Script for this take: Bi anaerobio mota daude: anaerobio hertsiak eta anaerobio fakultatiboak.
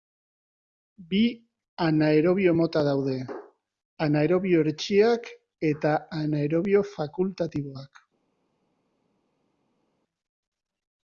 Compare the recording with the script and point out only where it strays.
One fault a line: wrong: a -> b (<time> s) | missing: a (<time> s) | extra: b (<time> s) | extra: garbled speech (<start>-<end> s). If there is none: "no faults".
no faults